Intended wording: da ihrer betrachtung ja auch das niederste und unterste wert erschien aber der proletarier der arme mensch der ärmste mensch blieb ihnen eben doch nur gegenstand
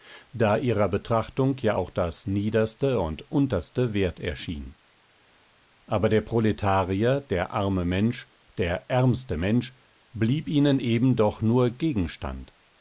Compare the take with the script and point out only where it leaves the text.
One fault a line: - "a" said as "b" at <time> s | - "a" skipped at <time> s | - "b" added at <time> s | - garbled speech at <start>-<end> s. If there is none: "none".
none